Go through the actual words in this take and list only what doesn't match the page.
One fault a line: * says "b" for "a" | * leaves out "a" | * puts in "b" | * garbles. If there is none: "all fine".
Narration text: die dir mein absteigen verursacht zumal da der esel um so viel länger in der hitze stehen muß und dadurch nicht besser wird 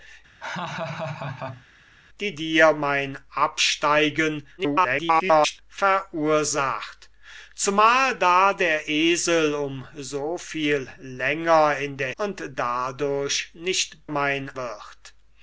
* garbles
* leaves out "hitze stehen muß"
* says "mein" for "besser"